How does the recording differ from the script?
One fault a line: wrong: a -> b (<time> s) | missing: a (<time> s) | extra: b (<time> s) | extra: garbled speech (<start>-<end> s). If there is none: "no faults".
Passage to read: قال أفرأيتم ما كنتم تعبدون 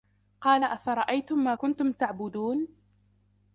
no faults